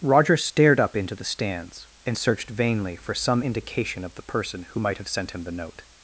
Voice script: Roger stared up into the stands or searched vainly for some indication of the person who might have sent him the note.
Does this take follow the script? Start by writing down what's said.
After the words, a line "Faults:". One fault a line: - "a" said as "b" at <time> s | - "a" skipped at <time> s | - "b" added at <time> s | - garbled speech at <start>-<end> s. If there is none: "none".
Roger stared up into the stands and searched vainly for some indication of the person who might have sent him the note.
Faults:
- "or" said as "and" at 2.1 s